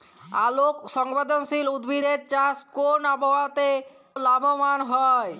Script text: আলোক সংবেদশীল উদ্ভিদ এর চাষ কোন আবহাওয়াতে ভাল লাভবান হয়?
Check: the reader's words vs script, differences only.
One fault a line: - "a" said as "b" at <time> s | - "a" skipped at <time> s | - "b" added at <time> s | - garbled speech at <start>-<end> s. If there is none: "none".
- "ভাল" skipped at 3.7 s